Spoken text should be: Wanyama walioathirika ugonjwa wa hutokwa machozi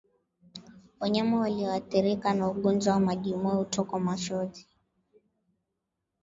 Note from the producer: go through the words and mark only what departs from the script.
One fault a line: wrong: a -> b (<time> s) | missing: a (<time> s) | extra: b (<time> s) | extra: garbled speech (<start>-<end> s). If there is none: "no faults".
extra: na (2.3 s)
extra: majimoyo (3.0 s)